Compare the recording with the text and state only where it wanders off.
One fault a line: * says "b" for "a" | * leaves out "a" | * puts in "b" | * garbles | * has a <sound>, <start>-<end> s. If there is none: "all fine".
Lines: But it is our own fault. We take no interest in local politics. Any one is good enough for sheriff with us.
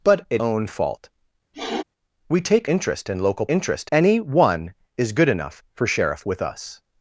* leaves out "is our"
* has a sniff, 1.5-1.8 s
* leaves out "no"
* says "interest" for "politics"